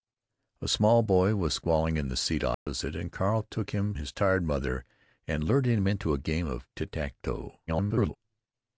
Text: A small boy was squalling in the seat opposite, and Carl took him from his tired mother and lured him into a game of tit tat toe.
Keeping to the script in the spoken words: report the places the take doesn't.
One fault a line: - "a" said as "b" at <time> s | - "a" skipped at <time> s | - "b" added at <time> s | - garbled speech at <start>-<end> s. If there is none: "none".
- "from" skipped at 3.9 s
- garbled speech at 7.7-8.2 s